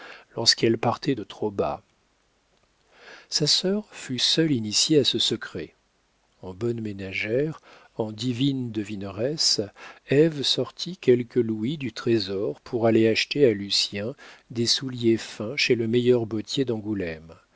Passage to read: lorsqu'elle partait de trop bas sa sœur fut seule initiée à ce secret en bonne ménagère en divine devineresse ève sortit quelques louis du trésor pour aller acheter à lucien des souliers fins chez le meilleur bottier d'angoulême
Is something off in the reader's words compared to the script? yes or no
no